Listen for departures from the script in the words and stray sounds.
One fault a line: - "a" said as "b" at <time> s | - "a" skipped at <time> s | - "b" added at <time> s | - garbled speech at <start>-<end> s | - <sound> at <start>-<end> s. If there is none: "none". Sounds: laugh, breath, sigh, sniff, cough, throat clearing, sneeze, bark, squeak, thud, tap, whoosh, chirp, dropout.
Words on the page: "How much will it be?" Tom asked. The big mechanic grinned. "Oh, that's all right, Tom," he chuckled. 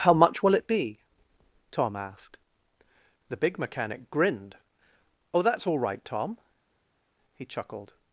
none